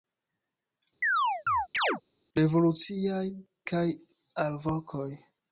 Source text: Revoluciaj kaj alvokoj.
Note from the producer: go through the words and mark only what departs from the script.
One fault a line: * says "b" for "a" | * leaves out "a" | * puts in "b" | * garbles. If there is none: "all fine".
all fine